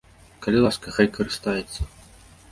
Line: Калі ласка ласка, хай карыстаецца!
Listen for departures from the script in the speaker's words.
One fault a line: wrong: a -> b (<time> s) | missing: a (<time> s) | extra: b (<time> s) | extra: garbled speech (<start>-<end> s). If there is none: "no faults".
missing: ласка (0.9 s)